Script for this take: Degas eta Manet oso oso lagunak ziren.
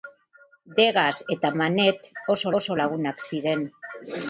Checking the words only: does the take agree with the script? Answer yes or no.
yes